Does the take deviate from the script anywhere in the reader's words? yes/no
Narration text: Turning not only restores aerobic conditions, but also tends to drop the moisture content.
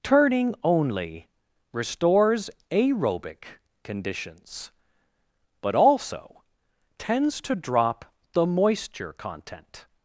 yes